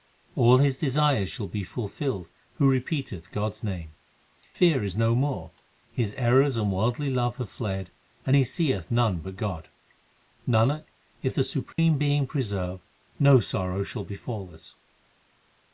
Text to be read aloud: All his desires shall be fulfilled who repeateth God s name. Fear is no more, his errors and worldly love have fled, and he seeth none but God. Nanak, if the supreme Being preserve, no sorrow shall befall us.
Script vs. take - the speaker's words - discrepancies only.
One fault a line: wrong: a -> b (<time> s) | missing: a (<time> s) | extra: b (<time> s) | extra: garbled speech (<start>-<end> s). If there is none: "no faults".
no faults